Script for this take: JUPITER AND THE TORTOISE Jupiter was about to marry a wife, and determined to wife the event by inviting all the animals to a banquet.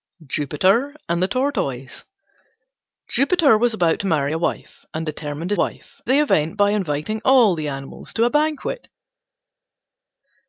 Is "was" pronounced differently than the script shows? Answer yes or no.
no